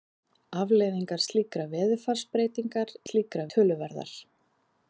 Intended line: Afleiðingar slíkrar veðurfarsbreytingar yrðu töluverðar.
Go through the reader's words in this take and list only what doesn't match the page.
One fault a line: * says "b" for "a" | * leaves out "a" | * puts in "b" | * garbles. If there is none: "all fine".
* says "slíkrar" for "yrðu"